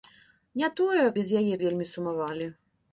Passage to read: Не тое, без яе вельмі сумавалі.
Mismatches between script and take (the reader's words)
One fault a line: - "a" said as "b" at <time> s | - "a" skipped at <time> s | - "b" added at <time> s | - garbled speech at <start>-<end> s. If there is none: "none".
none